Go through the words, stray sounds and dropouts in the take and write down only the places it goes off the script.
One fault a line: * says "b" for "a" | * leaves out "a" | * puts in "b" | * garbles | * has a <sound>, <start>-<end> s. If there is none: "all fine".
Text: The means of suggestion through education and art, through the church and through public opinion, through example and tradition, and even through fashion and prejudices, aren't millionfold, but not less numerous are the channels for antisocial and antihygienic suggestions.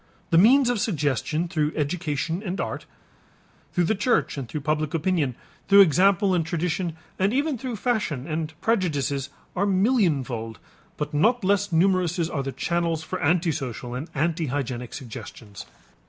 * says "are" for "aren't"